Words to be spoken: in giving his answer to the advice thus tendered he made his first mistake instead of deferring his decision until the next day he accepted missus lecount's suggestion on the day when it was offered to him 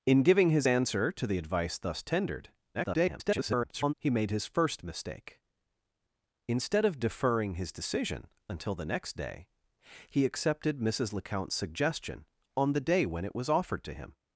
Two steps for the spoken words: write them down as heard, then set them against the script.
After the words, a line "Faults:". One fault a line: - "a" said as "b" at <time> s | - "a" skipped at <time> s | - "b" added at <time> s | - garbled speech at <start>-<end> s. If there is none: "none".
in giving his answer to the advice thus tendered [garbled] he made his first mistake instead of deferring his decision until the next day he accepted missus lecount's suggestion on the day when it was offered to him
Faults:
- garbled speech at 2.7-3.9 s